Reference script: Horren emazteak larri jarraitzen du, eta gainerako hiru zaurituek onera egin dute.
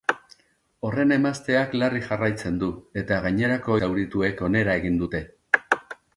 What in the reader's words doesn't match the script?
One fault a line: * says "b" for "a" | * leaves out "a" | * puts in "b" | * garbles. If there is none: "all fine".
* leaves out "hiru"